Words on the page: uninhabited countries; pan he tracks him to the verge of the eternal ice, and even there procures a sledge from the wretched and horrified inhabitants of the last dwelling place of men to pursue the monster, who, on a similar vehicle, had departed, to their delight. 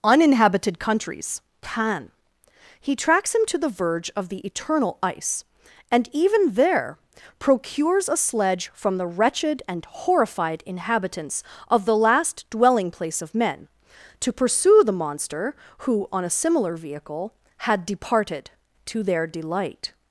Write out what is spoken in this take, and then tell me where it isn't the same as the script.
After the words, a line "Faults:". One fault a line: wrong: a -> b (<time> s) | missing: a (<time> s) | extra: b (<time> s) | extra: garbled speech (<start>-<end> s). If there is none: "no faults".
uninhabited countries; pan he tracks him to the verge of the eternal ice, and even there procures a sledge from the wretched and horrified inhabitants of the last dwelling place of men to pursue the monster, who, on a similar vehicle, had departed, to their delight.
Faults:
no faults